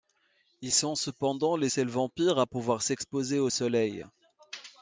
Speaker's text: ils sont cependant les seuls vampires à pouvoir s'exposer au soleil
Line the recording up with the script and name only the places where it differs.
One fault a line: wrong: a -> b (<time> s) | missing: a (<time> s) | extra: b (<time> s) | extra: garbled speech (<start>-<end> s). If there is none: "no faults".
no faults